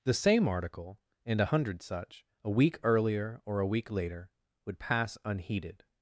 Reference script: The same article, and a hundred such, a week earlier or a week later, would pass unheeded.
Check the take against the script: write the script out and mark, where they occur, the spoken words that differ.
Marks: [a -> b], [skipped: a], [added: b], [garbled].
The same article, and a hundred such, a week earlier or a week later, would pass unheeded.